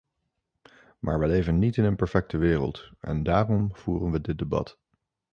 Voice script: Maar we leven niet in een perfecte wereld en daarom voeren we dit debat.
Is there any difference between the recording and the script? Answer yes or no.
no